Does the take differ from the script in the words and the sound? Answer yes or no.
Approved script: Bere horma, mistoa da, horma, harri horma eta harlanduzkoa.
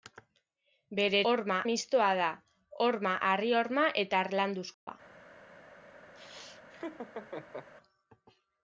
yes